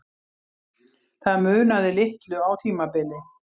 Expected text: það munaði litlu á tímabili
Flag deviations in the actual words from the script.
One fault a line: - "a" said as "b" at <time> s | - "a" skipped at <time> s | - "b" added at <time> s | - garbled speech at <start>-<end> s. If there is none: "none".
none